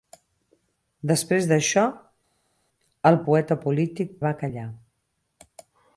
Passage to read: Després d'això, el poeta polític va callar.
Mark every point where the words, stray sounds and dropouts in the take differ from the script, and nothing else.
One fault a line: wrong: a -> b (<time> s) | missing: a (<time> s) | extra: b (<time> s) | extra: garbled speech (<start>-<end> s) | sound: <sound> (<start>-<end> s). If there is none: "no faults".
no faults